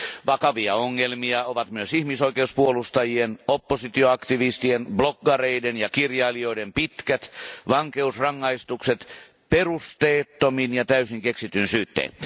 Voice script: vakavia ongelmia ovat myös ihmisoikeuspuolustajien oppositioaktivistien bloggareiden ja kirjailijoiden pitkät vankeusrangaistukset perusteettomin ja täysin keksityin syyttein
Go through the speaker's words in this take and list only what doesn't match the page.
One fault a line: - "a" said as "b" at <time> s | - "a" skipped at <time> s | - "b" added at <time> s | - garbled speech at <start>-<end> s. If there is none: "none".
none